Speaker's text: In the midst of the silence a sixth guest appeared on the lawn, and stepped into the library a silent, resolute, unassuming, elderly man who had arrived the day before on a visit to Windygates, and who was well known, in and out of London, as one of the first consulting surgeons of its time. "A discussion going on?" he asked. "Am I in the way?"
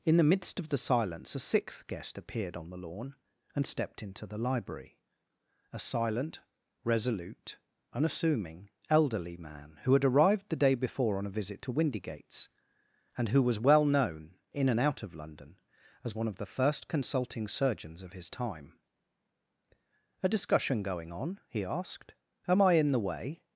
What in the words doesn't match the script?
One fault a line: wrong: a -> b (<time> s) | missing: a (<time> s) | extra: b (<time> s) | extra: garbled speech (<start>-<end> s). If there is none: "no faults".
wrong: its -> his (18.1 s)